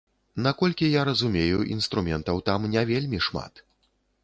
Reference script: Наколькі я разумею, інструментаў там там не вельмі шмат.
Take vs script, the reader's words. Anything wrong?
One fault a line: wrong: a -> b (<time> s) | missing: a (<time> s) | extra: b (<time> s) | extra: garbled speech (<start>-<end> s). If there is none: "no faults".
missing: там (2.7 s)